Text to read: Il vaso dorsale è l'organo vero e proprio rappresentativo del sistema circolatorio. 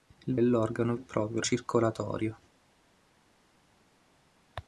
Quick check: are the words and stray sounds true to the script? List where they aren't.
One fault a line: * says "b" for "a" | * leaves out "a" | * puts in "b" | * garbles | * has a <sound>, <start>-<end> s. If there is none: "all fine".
* leaves out "vaso dorsale"
* leaves out "vero"
* leaves out "rappresentativo del sistema"